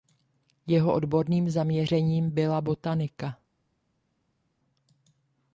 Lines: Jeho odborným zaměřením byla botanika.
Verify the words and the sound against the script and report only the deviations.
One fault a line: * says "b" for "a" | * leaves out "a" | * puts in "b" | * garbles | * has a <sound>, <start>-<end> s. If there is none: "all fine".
all fine